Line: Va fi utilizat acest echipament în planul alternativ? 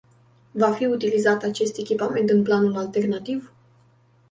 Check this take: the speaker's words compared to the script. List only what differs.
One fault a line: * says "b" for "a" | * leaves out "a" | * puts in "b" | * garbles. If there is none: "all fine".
all fine